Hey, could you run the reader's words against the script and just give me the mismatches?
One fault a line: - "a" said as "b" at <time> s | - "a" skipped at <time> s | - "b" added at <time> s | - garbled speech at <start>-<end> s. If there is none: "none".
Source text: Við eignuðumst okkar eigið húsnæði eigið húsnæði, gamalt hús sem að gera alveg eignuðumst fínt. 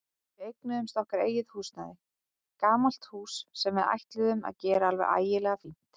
- "eigið húsnæði" skipped at 1.9 s
- "við ætluðum" added at 3.8 s
- "eignuðumst" said as "ægilega" at 5.2 s